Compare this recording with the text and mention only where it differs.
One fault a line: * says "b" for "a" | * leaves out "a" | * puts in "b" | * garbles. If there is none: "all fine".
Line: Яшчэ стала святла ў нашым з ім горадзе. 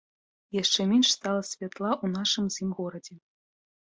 * puts in "менш"